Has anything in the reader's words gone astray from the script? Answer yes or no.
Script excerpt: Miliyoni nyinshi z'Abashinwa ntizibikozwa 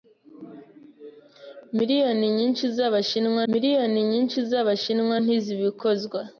yes